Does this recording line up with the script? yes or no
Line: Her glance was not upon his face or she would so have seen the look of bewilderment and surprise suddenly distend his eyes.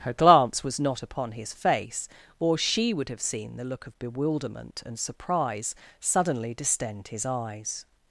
no